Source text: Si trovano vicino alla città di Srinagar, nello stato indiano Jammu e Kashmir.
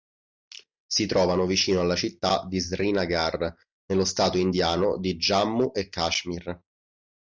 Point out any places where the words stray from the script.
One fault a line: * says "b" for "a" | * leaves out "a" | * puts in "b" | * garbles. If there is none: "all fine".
* puts in "di"